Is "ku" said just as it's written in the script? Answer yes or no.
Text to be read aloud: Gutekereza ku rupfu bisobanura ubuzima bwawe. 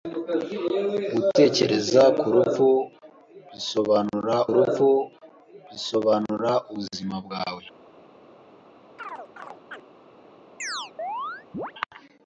yes